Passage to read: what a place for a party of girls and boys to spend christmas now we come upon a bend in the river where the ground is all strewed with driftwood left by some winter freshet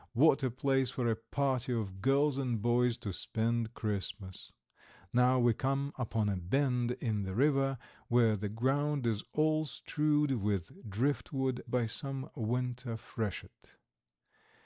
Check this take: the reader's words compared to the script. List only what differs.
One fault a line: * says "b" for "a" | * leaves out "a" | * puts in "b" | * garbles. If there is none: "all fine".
* leaves out "left"